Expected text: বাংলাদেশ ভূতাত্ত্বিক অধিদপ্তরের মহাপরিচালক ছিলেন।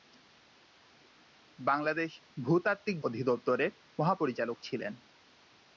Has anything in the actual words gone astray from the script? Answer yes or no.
no